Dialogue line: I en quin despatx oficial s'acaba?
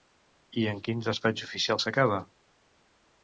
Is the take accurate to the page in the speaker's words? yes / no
yes